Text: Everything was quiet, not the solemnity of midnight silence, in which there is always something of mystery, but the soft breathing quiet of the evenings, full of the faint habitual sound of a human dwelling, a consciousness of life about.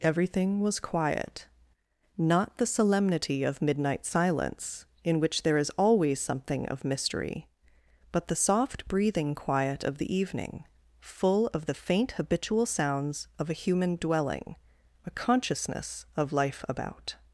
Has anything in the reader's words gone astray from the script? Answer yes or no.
yes